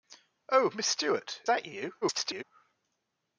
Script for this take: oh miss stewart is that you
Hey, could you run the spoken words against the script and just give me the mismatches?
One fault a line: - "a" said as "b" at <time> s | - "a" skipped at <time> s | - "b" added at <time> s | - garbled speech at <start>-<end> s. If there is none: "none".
- "is" skipped at 1.4 s
- garbled speech at 2.0-2.4 s